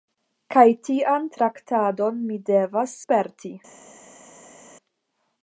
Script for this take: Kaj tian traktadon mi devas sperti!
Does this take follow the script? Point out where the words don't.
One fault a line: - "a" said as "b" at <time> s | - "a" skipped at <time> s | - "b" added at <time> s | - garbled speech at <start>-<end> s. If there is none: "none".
none